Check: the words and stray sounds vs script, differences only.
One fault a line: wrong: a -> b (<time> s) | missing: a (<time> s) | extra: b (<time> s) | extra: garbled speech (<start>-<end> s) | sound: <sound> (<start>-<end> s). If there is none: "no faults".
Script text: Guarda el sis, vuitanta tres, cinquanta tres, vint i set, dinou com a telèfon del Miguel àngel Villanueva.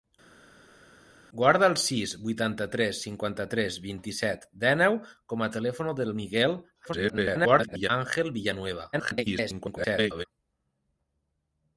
extra: garbled speech (6.8-7.9 s)
extra: garbled speech (8.9-10.3 s)